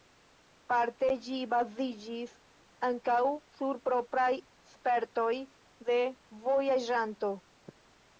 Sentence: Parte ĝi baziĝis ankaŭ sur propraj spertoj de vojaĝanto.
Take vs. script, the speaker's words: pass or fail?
pass